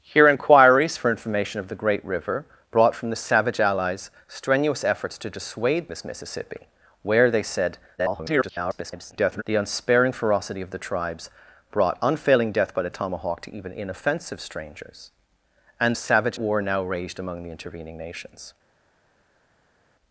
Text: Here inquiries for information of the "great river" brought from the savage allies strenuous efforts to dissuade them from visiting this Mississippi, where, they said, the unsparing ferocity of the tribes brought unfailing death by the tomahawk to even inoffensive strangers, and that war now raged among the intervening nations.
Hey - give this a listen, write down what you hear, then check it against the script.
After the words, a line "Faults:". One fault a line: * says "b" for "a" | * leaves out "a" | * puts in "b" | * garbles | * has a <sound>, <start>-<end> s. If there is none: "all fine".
Here inquiries for information of the "great river" brought from the savage allies strenuous efforts to dissuade this Mississippi, where, they said, [garbled] the unsparing ferocity of the tribes brought unfailing death by the tomahawk to even inoffensive strangers, and savage war now raged among the intervening nations.
Faults:
* leaves out "them from visiting"
* garbles
* says "savage" for "that"